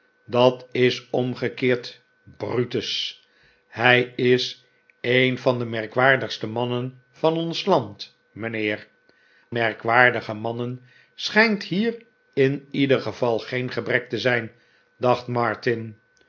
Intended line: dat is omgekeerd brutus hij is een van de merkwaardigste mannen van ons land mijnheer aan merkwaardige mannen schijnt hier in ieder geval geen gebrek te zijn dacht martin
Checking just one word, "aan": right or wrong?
wrong